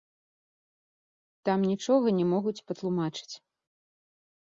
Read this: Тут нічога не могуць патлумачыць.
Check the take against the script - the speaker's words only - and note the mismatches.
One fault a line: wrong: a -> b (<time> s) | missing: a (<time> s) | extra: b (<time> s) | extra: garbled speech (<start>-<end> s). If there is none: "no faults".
wrong: Тут -> Там (1.5 s)